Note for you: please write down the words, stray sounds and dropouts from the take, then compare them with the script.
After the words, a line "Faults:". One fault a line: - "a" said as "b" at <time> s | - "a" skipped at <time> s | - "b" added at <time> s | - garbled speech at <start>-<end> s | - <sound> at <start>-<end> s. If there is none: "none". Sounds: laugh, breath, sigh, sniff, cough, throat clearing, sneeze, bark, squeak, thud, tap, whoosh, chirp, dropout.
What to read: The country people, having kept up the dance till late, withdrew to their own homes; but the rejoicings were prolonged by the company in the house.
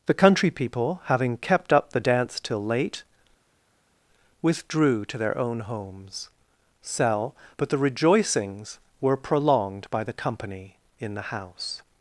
The country people, having kept up the dance till late, withdrew to their own homes; sell but the rejoicings were prolonged by the company in the house.
Faults:
- "sell" added at 6.8 s